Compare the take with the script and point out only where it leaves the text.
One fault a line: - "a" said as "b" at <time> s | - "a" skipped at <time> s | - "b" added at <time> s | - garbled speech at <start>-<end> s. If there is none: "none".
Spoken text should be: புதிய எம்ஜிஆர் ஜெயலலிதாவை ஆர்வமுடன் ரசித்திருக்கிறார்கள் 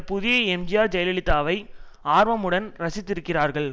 none